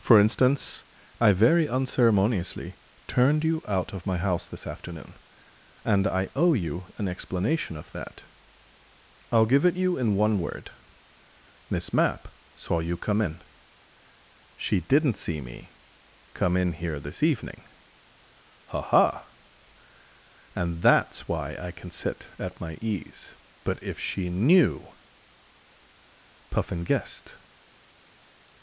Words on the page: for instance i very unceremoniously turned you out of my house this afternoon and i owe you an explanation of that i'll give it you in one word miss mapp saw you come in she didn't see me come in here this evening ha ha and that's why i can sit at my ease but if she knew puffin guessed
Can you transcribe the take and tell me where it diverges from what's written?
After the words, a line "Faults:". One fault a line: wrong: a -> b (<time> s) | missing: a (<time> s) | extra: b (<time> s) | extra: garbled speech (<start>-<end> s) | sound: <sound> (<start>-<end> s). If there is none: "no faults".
for instance i very unceremoniously turned you out of my house this afternoon and i owe you an explanation of that i'll give it you in one word miss mapp saw you come in she didn't see me come in here this evening ha ha and that's why i can sit at my ease but if she knew puffin guessed
Faults:
no faults